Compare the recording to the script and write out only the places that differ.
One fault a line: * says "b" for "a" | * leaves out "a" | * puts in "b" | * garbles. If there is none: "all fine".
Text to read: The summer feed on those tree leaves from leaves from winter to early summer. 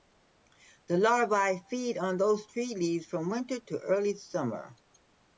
* says "larvae" for "summer"
* leaves out "leaves from"